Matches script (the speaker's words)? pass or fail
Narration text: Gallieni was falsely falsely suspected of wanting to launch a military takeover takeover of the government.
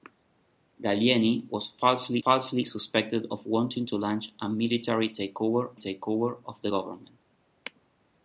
pass